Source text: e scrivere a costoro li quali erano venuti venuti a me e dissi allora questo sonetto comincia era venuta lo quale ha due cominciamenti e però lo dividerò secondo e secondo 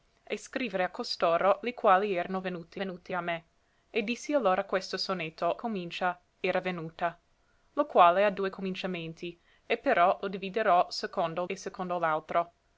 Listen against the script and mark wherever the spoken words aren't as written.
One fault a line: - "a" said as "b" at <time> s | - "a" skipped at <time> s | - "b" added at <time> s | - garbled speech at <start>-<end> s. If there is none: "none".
none